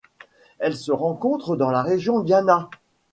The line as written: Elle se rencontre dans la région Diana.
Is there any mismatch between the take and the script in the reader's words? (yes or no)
no